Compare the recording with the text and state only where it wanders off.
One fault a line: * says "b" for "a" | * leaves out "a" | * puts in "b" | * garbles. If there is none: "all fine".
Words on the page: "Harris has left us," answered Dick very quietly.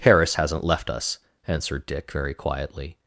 * says "hasn't" for "has"